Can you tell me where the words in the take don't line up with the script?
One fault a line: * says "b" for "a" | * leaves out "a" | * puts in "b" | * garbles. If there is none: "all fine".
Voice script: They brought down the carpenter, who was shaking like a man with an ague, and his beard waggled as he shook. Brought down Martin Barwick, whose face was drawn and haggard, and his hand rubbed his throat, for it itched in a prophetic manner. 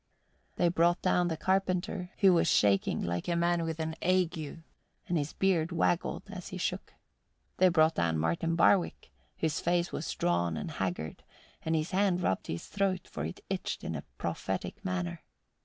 * puts in "They"